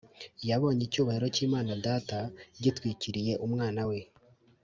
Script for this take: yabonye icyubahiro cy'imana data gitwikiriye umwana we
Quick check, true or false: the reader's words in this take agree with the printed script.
true